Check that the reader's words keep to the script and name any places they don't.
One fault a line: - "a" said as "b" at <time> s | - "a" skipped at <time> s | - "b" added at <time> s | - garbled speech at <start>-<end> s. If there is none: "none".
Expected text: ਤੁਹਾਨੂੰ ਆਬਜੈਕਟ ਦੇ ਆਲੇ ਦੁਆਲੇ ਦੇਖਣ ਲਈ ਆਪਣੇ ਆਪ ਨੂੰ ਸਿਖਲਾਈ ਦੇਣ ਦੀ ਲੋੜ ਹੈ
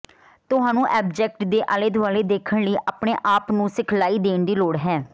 none